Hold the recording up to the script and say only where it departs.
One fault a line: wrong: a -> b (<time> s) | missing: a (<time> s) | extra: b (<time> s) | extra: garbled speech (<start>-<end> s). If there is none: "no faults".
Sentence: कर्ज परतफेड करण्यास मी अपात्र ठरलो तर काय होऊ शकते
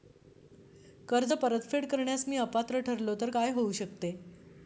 no faults